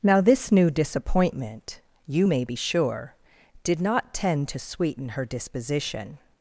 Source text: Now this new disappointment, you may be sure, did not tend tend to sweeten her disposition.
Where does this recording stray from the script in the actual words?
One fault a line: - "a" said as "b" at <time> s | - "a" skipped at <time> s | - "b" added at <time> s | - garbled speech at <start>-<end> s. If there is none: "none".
- "tend" skipped at 4.5 s